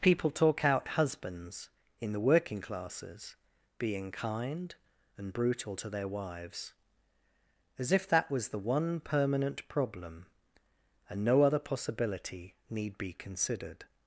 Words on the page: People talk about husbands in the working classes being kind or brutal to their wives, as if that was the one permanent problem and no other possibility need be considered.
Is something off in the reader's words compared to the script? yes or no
yes